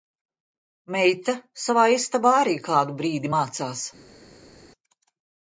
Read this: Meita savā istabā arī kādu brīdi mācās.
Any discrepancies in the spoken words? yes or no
no